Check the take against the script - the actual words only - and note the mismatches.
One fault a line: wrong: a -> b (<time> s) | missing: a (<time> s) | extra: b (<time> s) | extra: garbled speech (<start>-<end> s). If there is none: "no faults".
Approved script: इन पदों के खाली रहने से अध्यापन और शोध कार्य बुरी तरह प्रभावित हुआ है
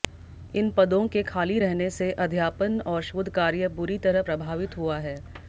no faults